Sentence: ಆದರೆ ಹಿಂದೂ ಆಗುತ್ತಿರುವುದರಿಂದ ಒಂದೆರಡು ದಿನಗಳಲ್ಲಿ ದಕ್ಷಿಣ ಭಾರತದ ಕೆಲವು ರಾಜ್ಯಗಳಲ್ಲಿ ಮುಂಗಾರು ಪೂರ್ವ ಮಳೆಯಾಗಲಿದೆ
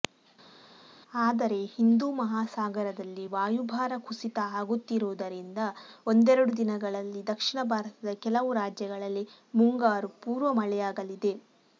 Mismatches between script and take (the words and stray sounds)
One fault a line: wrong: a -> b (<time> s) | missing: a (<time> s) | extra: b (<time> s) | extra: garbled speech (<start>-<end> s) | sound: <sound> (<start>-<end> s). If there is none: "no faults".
extra: ಮಹಾಸಾಗರದಲ್ಲಿ ವಾಯುಭಾರ ಕುಸಿತ (2.1 s)